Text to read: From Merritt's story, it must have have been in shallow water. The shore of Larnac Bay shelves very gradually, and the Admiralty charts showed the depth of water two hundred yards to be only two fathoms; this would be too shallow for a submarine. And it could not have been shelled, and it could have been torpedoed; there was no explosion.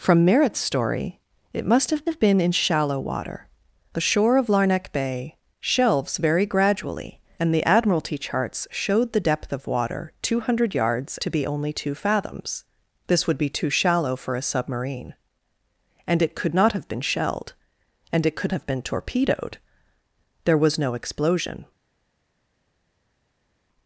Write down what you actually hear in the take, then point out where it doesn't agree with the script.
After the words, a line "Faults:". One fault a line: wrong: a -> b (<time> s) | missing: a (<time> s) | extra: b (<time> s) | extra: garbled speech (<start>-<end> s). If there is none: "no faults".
From Merritt's story, it must have have been in shallow water. The shore of Larnac Bay shelves very gradually, and the Admiralty charts showed the depth of water two hundred yards to be only two fathoms; this would be too shallow for a submarine. And it could not have been shelled, and it could have been torpedoed; there was no explosion.
Faults:
no faults